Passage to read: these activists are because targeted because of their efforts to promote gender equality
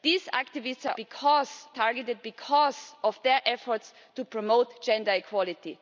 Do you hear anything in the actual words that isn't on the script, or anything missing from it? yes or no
no